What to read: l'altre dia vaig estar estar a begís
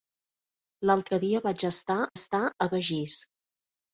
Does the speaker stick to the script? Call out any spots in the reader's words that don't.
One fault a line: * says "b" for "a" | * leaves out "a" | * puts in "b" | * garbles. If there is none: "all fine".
all fine